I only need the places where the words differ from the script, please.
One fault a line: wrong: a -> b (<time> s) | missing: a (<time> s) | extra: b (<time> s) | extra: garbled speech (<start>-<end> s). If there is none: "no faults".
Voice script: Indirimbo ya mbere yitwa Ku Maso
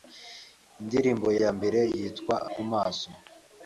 no faults